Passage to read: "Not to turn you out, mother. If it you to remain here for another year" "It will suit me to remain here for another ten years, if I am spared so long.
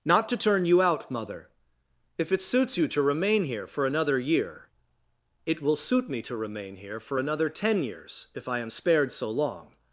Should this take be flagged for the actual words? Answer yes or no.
yes